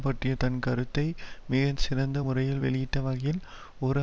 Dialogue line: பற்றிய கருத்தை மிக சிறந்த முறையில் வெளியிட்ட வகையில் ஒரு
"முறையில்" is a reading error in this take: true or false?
false